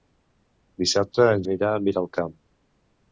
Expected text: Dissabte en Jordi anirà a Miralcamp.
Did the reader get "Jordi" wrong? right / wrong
wrong